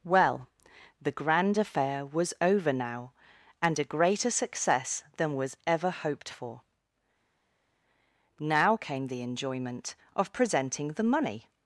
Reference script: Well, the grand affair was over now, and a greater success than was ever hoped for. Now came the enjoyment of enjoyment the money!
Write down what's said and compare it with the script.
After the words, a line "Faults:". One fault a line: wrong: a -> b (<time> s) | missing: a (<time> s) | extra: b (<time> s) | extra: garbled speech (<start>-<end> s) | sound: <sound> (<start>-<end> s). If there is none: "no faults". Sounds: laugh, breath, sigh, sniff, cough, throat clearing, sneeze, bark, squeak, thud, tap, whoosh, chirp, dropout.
Well, the grand affair was over now, and a greater success than was ever hoped for. Now came the enjoyment of presenting the money!
Faults:
wrong: enjoyment -> presenting (10.3 s)